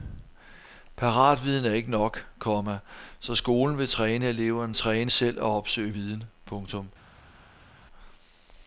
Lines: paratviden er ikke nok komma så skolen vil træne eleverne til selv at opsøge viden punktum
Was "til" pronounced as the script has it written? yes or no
no